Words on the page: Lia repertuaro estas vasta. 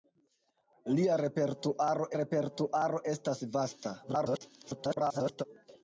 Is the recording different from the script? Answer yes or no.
yes